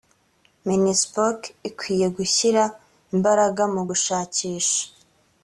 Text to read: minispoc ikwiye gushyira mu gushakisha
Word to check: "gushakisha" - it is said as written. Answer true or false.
true